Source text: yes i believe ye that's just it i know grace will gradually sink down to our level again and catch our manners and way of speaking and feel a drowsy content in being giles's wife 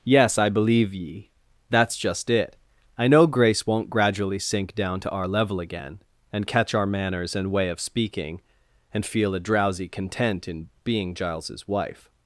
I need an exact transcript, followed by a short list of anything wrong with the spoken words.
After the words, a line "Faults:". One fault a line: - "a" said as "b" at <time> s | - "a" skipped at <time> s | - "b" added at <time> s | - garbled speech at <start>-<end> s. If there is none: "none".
yes i believe ye that's just it i know grace won't gradually sink down to our level again and catch our manners and way of speaking and feel a drowsy content in being giles's wife
Faults:
- "will" said as "won't" at 3.6 s